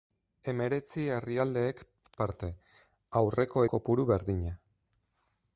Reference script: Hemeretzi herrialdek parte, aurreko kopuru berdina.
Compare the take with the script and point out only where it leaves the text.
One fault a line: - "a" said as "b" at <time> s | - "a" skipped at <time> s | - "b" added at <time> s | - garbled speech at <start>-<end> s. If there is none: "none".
none